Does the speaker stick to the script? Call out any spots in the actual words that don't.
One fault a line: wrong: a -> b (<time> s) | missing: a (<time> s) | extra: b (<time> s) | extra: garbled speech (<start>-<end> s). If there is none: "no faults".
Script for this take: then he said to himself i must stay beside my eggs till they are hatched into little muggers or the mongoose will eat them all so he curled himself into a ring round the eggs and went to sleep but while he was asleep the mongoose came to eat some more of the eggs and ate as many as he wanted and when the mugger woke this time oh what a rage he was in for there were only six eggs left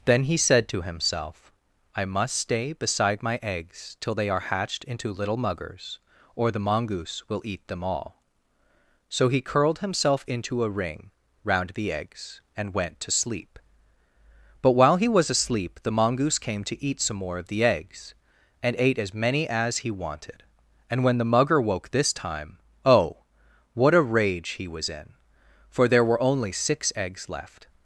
no faults